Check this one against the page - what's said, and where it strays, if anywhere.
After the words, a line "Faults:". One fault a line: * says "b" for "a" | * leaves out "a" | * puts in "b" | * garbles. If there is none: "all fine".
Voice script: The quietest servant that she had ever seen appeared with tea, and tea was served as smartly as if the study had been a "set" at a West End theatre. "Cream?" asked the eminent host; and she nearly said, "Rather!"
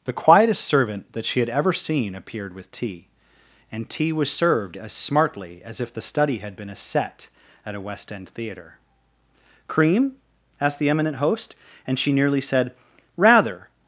The quietest servant that she had ever seen appeared with tea, and tea was served as smartly as if the study had been a "set" at a West End theatre. "Cream?" asked the eminent host; and she nearly said, "Rather!"
Faults:
all fine